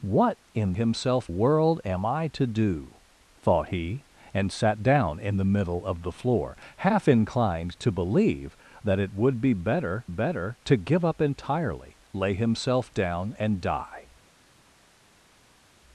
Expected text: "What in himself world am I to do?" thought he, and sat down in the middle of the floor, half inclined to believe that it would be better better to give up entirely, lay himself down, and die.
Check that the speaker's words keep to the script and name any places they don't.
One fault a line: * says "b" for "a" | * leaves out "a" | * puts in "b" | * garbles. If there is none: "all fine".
all fine